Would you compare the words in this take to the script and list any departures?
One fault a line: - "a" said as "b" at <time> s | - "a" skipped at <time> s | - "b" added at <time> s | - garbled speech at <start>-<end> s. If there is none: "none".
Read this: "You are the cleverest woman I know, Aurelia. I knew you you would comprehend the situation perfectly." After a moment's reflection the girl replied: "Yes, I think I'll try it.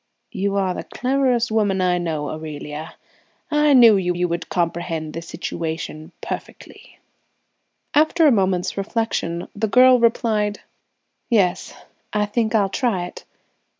none